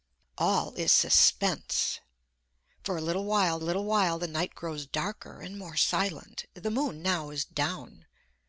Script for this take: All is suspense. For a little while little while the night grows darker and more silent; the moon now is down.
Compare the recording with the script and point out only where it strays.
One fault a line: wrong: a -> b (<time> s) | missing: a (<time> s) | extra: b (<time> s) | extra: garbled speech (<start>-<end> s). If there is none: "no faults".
no faults